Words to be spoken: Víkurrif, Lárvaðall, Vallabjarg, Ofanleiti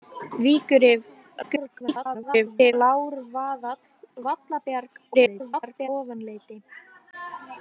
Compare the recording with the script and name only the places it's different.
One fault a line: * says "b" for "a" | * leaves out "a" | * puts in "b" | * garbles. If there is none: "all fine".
* garbles
* garbles